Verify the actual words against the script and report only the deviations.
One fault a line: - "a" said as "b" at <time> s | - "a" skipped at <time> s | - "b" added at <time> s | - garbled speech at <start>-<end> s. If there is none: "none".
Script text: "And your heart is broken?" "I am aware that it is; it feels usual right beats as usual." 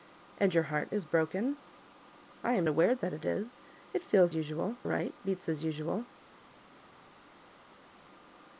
none